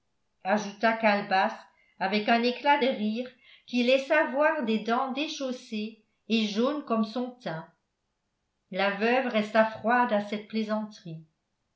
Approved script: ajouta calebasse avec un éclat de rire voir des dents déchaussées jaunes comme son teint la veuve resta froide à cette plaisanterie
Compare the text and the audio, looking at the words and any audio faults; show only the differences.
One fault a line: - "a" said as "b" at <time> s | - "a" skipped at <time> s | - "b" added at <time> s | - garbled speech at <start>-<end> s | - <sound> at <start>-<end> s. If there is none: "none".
- "qui laissa" added at 3.6 s
- "et" added at 6.3 s